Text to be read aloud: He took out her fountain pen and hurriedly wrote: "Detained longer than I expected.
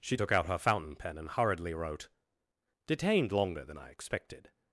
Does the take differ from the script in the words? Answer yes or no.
yes